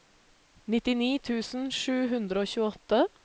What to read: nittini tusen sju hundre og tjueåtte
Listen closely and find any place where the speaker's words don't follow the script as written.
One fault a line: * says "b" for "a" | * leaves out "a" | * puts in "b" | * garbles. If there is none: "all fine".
all fine